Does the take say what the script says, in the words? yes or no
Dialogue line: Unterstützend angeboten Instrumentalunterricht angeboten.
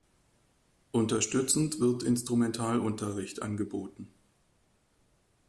no